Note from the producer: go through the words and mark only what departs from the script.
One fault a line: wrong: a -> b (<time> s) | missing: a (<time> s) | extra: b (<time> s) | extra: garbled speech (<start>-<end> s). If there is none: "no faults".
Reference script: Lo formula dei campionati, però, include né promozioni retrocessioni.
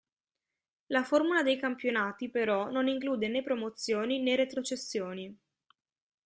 wrong: Lo -> La (0.9 s)
extra: non (2.7 s)
extra: né (4.2 s)